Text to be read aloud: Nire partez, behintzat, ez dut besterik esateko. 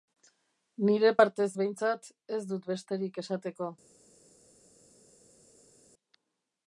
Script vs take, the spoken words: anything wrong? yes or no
no